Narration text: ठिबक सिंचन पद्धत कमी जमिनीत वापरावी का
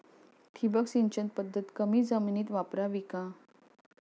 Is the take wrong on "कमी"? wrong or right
right